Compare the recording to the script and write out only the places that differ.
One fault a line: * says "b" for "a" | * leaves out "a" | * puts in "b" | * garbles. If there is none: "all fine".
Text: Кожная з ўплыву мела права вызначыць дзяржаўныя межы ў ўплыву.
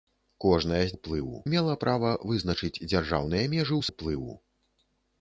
all fine